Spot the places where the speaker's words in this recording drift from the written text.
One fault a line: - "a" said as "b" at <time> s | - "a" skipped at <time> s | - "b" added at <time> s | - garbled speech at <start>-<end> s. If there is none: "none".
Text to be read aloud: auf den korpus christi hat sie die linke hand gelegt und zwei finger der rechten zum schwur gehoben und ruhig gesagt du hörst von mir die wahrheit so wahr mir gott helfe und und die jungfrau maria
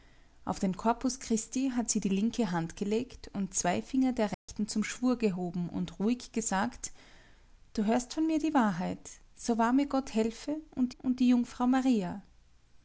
none